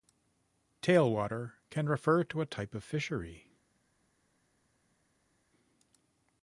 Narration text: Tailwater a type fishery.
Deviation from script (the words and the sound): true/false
true